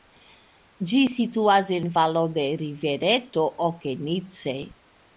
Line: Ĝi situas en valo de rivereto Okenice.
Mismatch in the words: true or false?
false